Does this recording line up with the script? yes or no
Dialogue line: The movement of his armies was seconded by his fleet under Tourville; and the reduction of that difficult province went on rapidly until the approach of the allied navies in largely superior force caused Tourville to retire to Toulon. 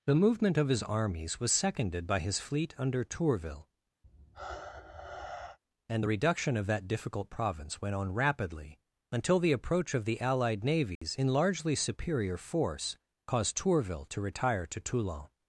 yes